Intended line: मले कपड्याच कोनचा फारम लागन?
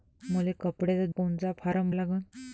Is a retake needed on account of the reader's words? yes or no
no